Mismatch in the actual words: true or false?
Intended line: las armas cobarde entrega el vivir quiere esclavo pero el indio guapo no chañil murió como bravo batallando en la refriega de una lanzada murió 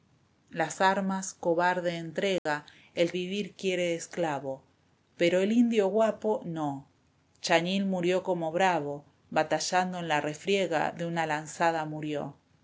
false